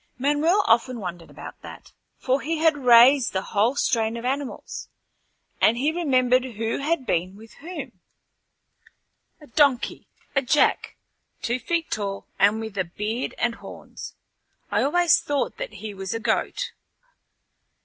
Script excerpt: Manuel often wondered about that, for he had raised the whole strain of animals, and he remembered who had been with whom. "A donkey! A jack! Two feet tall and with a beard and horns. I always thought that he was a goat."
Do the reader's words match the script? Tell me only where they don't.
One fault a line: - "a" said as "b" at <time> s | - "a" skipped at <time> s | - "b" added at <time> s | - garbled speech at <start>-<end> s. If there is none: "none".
none